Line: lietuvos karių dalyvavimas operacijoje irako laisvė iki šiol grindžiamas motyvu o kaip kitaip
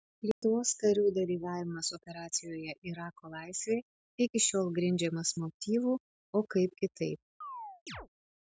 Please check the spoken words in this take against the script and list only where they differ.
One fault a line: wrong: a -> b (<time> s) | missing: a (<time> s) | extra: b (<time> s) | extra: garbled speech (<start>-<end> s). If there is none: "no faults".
no faults